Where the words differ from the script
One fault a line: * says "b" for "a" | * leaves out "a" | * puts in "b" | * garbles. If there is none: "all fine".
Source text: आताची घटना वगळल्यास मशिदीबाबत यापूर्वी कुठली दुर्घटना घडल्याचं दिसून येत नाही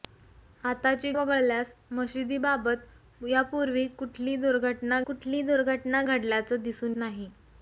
* leaves out "घटना"
* puts in "कुठली दुर्घटना"
* leaves out "येत"